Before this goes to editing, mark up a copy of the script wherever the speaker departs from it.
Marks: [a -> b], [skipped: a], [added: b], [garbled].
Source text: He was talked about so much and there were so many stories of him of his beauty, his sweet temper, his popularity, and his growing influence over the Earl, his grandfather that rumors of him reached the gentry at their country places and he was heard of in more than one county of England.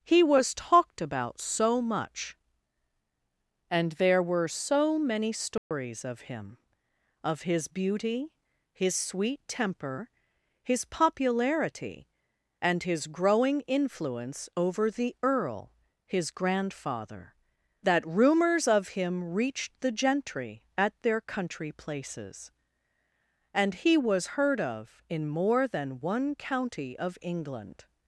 He was talked about so much and there were so many stories of him of his beauty, his sweet temper, his popularity, and his growing influence over the Earl, his grandfather that rumors of him reached the gentry at their country places and he was heard of in more than one county of England.